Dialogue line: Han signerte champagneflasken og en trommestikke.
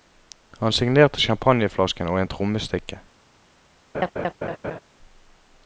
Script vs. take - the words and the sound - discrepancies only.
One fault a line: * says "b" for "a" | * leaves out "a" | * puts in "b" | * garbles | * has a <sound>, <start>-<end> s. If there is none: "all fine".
* has a laugh, 3.9-4.8 s